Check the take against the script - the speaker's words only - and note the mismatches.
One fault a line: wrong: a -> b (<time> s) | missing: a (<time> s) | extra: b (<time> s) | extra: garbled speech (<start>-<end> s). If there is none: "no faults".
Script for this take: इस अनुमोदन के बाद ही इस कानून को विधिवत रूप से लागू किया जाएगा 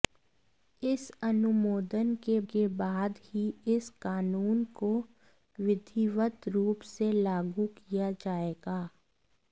extra: के (2.5 s)